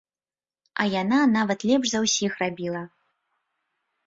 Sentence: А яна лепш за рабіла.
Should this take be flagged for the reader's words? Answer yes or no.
yes